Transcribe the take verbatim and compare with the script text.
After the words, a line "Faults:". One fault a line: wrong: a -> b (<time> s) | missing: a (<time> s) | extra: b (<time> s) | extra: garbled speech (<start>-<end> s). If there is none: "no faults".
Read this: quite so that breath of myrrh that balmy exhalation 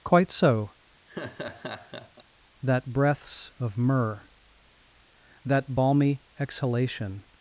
quite so that breaths of myrrh that balmy exhalation
Faults:
wrong: breath -> breaths (2.9 s)